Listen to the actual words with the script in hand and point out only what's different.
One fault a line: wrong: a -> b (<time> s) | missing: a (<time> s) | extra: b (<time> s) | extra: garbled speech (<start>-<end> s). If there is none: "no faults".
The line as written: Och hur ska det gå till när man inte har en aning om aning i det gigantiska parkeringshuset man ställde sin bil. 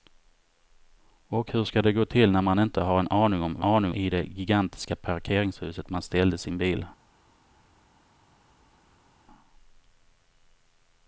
no faults